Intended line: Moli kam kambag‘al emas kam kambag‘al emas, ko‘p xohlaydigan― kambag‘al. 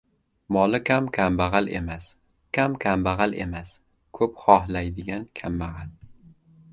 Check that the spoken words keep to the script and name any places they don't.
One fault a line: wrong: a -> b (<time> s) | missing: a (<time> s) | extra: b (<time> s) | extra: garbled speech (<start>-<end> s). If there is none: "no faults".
no faults